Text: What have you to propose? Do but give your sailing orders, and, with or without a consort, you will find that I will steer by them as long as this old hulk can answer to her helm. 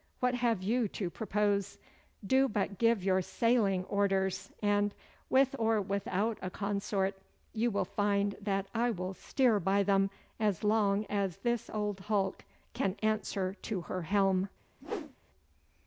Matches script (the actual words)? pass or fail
pass